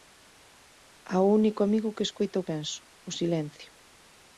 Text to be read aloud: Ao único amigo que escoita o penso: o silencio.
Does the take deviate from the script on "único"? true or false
false